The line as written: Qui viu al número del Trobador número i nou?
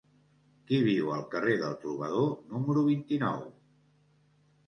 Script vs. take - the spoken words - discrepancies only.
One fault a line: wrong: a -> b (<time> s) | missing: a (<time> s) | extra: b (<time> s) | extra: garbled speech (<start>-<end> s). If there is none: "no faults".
wrong: número -> carrer (1.3 s)
extra: vint (2.9 s)